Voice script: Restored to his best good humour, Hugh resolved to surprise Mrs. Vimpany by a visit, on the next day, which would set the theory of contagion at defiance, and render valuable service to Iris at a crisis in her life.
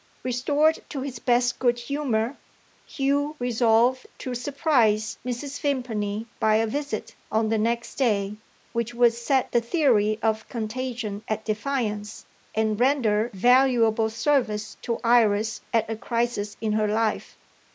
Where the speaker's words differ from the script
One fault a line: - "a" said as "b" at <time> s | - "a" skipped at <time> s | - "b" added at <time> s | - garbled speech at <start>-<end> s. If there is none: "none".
none